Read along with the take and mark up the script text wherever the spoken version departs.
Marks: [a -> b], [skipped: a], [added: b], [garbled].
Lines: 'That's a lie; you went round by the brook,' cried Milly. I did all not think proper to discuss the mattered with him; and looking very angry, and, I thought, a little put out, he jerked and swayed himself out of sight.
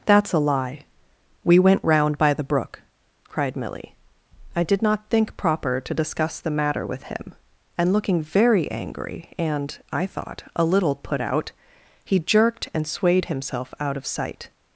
'That's a lie; [you -> we] went round by the brook,' cried Milly. I did [skipped: all] not think proper to discuss the [mattered -> matter] with him; and looking very angry, and, I thought, a little put out, he jerked and swayed himself out of sight.